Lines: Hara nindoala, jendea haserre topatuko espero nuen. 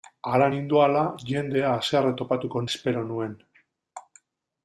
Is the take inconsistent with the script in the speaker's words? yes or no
no